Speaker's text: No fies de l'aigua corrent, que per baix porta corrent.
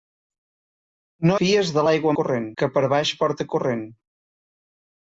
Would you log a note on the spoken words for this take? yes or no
no